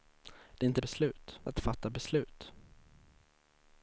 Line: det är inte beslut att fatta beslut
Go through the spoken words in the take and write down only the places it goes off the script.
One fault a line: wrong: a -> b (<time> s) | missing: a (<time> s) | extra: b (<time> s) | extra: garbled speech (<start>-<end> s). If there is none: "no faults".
no faults